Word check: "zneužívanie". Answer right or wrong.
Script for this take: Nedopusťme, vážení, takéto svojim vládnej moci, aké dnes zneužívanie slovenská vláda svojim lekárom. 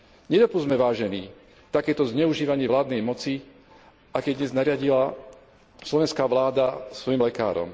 wrong